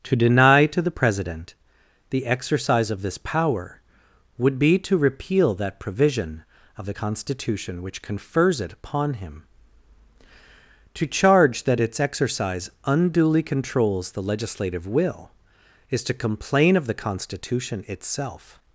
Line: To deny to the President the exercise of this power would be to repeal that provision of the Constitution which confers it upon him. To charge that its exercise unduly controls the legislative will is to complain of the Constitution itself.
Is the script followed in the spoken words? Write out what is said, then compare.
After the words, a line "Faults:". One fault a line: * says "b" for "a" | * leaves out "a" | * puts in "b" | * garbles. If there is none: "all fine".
To deny to the President the exercise of this power would be to repeal that provision of the Constitution which confers it upon him. To charge that its exercise unduly controls the legislative will is to complain of the Constitution itself.
Faults:
all fine